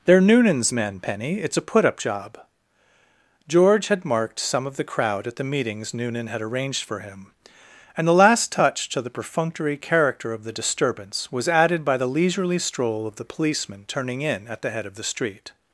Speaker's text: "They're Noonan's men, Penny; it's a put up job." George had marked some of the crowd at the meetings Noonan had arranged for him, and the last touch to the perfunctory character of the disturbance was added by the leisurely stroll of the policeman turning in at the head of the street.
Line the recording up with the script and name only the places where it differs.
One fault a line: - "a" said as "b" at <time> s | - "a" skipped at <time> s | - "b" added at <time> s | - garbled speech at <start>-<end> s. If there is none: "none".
none